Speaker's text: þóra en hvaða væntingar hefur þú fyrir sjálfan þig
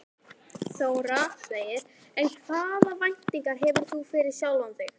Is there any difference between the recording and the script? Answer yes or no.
no